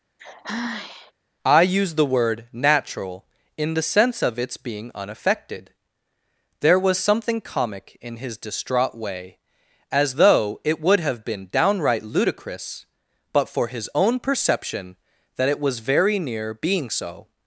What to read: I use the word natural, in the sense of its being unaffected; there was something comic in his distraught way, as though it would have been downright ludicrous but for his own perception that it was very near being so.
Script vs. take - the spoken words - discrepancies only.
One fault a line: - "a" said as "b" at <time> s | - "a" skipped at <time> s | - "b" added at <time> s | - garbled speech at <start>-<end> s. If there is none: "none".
none